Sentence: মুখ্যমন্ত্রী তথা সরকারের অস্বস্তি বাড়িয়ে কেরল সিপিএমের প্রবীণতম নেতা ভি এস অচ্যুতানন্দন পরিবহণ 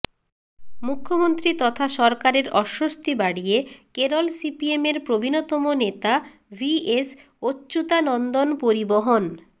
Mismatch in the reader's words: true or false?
false